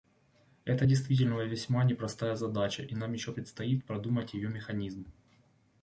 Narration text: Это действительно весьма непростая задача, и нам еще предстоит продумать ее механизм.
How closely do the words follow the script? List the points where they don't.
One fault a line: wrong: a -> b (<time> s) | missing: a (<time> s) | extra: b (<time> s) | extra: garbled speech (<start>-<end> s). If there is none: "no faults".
no faults